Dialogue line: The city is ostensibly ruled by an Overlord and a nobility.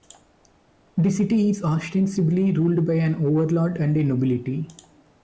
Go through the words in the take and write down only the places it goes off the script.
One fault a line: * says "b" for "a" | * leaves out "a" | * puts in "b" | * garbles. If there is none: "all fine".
all fine